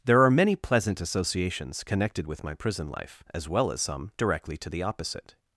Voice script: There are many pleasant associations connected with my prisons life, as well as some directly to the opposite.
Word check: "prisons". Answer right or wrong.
wrong